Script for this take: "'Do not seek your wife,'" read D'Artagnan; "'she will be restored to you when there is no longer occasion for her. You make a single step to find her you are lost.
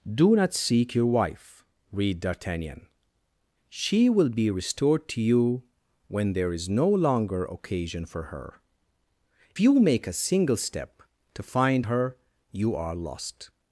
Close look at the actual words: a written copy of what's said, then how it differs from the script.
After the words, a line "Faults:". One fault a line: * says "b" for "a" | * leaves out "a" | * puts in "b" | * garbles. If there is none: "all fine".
"'Do not seek your wife,'" read D'Artagnan; "'she will be restored to you when there is no longer occasion for her. You make a single step to find her you are lost.
Faults:
all fine